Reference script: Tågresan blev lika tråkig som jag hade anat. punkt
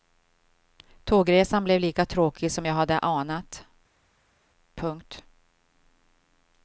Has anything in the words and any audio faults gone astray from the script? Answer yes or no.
no